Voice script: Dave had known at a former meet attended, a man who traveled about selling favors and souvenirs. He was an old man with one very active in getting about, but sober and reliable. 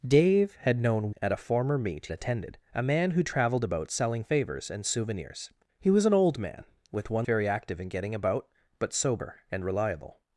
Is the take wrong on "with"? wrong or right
right